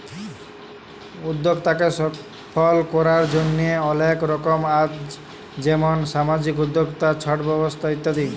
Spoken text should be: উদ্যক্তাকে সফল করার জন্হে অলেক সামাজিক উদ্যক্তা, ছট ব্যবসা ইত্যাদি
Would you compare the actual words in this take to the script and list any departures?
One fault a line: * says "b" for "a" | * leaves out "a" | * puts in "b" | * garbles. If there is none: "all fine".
* puts in "রকম আছ যেমন"